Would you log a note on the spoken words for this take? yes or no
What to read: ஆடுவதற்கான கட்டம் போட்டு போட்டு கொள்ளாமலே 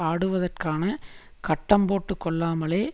yes